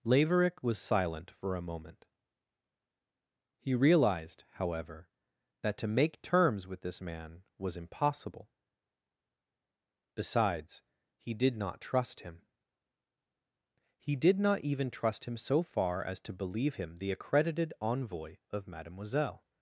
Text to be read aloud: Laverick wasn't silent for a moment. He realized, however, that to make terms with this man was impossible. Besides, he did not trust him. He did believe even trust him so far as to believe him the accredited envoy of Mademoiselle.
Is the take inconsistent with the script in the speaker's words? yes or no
yes